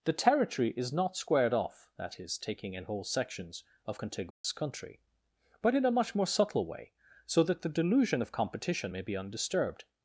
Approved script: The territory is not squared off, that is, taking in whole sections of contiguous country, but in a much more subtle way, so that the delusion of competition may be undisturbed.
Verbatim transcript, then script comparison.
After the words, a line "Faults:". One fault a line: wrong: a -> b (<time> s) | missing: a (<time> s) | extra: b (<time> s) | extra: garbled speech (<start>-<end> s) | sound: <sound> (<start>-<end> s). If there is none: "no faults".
The territory is not squared off, that is, taking in whole sections of contiguous country, but in a much more subtle way, so that the delusion of competition may be undisturbed.
Faults:
sound: dropout (4.3-4.4 s)